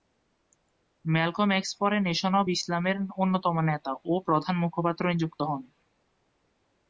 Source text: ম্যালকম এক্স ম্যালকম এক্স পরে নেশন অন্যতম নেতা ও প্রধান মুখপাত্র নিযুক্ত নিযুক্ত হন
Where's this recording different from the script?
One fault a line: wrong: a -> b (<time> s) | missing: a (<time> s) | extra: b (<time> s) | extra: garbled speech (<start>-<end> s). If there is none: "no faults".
wrong: ম্যালকম এক্স পরে নেশন -> পরে নেশন অব ইসলামের (1.8 s)
missing: নিযুক্ত (5.4 s)